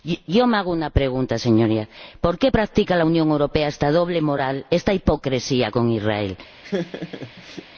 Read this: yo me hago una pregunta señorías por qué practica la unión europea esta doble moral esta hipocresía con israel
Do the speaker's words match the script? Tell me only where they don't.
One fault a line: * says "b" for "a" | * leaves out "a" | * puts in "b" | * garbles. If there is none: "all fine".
all fine